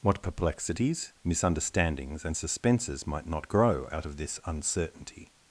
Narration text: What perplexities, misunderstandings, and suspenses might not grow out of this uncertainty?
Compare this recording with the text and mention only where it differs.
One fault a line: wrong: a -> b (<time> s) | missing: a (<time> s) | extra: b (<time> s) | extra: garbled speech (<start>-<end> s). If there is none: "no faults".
no faults